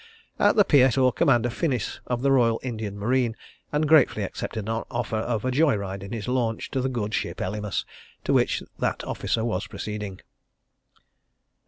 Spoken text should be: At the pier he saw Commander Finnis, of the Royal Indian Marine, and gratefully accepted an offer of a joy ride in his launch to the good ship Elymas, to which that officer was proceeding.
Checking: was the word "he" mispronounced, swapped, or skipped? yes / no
yes